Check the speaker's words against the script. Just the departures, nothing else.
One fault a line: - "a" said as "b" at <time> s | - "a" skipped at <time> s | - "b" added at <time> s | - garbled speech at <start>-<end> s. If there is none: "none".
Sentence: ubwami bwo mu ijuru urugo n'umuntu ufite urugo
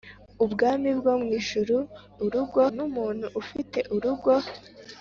none